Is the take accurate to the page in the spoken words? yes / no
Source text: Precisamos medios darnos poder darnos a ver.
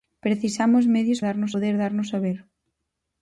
yes